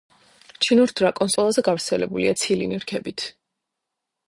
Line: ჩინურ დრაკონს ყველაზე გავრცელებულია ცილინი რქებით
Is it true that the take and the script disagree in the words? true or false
false